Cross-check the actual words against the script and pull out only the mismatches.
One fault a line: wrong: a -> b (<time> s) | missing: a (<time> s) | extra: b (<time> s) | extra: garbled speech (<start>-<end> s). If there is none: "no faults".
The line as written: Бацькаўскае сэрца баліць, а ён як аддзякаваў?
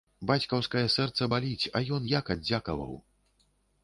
no faults